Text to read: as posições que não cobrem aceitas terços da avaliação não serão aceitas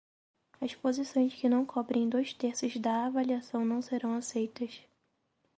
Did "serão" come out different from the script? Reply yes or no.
no